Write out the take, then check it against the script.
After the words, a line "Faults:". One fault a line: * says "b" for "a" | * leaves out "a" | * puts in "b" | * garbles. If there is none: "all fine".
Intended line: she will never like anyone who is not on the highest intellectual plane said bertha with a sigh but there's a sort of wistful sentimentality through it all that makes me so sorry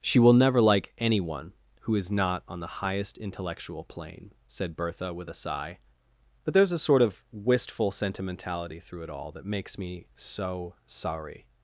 she will never like anyone who is not on the highest intellectual plane said bertha with a sigh but there's a sort of wistful sentimentality through it all that makes me so sorry
Faults:
all fine